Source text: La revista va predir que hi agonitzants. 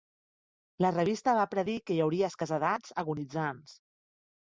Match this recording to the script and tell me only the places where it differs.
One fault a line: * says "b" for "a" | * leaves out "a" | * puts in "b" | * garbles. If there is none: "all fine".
* puts in "hauria escassedats"